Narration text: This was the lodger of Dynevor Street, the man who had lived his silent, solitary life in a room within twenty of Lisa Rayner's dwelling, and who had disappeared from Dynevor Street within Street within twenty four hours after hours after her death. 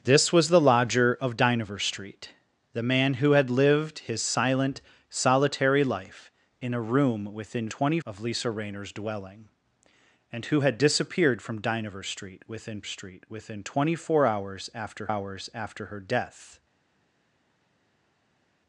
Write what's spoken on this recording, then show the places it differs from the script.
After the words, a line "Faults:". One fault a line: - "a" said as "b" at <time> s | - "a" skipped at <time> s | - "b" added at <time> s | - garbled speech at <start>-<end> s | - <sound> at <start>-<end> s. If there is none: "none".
This was the lodger of Dynevor Street, the man who had lived his silent, solitary life in a room within twenty of Lisa Rayner's dwelling, and who had disappeared from Dynevor Street within Street within twenty four hours after hours after her death.
Faults:
none